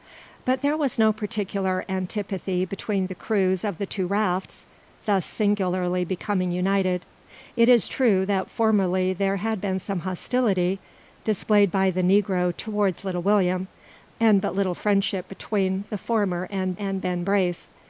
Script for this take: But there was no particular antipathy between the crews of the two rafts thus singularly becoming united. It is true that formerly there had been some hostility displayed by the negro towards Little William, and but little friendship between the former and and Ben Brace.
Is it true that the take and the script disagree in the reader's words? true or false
false